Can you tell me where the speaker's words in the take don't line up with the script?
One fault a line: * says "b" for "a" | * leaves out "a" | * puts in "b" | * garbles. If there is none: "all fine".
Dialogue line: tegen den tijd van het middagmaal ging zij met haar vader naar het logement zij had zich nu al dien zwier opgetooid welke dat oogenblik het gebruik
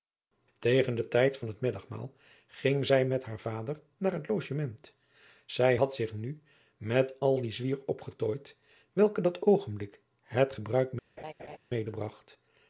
* puts in "met"